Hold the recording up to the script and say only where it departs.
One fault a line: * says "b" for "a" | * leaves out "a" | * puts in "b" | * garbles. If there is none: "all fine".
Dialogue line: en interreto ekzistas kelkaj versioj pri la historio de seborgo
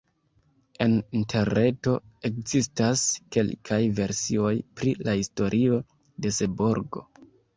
all fine